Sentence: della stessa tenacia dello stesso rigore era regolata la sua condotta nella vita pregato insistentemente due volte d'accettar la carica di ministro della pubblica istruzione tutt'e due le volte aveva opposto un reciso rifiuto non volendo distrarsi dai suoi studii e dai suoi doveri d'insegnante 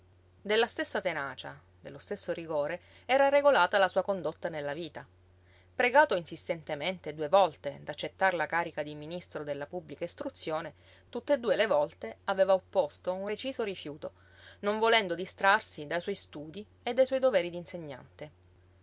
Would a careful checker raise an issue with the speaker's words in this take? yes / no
no